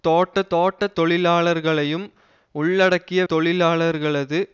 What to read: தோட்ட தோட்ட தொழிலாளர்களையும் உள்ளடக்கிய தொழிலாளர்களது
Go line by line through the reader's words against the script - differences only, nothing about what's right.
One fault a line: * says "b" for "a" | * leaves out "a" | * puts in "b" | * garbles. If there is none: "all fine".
all fine